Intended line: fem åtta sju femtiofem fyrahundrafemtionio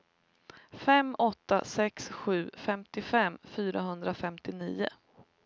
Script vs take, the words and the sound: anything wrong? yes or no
yes